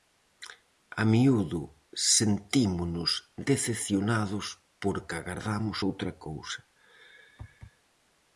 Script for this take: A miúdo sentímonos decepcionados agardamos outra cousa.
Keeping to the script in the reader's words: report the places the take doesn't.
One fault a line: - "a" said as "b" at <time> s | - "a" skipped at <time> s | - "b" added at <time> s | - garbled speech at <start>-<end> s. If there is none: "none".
- "porque" added at 4.8 s